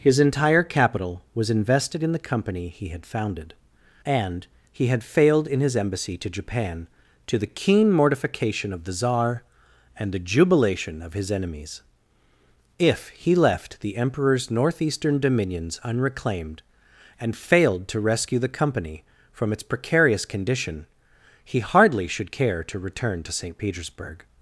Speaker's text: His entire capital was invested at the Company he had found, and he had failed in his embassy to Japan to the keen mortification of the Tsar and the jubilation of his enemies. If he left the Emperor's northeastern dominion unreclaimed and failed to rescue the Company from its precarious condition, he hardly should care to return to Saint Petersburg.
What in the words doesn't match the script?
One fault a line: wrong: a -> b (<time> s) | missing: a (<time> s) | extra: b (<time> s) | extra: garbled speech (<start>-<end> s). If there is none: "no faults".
wrong: at -> in (2.0 s)
wrong: found -> founded (3.0 s)
wrong: dominion -> dominions (15.2 s)